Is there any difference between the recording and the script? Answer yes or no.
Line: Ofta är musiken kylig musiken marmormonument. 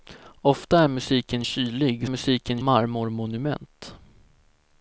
no